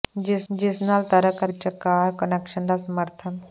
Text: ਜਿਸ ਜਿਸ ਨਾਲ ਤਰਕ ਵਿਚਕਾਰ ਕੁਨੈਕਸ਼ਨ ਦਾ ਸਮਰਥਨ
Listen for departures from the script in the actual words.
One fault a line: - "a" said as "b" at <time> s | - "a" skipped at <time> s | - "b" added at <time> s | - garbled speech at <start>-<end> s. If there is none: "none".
none